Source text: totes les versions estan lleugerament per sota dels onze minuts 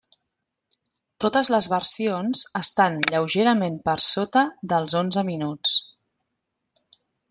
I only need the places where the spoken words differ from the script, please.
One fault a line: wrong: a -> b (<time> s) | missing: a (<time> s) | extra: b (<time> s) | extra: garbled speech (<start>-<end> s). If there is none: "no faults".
no faults